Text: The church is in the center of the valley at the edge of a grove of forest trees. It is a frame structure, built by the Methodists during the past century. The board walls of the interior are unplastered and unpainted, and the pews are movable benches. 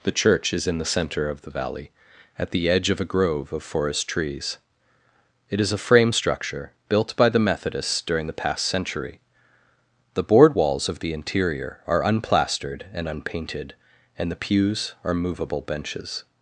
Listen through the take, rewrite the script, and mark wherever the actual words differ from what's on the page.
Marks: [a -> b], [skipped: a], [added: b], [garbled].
The church is in the center of the valley at the edge of a grove of forest trees. It is a frame structure, built by the Methodists during the past century. The board walls of the interior are unplastered and unpainted, and the pews are movable benches.